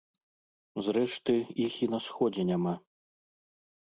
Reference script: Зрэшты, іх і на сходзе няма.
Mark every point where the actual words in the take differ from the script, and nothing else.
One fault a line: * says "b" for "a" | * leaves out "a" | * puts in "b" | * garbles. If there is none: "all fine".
all fine